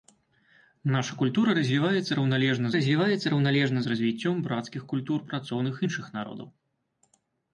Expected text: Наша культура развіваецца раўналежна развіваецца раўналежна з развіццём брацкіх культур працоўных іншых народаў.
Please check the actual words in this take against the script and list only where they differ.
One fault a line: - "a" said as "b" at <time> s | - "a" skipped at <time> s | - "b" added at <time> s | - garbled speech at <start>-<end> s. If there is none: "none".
none